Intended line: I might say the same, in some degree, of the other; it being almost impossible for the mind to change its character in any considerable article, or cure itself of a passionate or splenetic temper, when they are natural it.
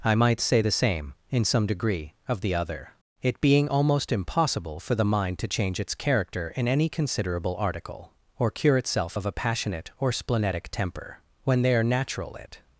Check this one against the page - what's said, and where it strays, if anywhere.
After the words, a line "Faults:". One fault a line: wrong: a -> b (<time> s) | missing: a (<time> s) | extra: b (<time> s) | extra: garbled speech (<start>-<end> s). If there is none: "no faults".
I might say the same, in some degree, of the other; it being almost impossible for the mind to change its character in any considerable article, or cure itself of a passionate or splenetic temper, when they are natural it.
Faults:
no faults